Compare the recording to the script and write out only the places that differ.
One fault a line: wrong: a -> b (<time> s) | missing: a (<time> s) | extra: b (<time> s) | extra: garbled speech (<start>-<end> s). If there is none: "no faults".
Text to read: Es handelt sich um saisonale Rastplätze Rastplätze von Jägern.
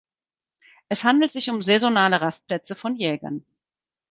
missing: Rastplätze (2.7 s)